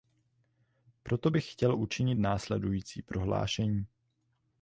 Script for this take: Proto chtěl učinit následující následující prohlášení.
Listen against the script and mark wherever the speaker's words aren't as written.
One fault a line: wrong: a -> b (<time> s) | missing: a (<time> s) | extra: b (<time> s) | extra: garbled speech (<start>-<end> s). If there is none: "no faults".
extra: bych (1.3 s)
missing: následující (3.0 s)